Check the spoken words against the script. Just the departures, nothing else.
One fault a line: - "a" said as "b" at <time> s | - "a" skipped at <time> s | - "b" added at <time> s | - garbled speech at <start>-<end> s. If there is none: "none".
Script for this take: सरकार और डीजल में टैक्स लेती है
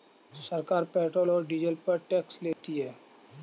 - "पेट्रोल" added at 0.9 s
- "में" said as "पर" at 1.9 s